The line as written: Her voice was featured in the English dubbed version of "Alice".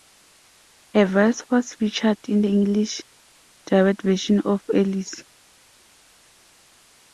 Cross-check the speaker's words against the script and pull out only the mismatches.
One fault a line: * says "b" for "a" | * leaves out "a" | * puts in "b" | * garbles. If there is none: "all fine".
all fine